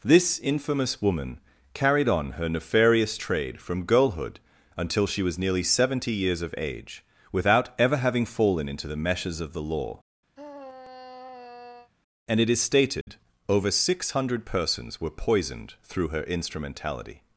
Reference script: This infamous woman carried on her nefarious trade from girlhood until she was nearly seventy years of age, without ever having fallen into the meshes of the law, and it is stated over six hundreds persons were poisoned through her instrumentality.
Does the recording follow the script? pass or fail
fail